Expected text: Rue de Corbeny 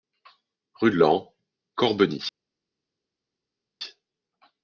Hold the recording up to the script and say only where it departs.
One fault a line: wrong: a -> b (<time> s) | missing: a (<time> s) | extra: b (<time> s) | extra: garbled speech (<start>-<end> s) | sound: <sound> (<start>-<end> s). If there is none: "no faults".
extra: Laon (1.0 s)